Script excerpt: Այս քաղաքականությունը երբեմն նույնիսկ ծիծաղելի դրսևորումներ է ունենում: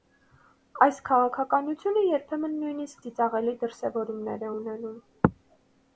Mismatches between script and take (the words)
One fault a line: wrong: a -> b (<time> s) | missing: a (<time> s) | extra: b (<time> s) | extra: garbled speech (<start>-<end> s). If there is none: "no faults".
no faults